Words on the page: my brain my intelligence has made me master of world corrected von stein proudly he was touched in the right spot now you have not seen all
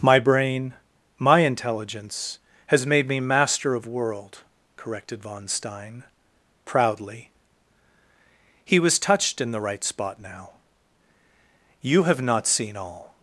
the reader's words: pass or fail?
pass